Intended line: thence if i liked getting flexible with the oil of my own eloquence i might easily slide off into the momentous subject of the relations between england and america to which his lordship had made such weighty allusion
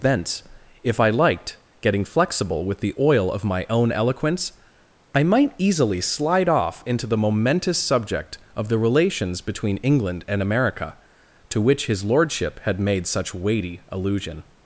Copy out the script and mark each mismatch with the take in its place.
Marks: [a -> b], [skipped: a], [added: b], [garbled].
thence if i liked getting flexible with the oil of my own eloquence i might easily slide off into the momentous subject of the relations between england and america to which his lordship had made such weighty allusion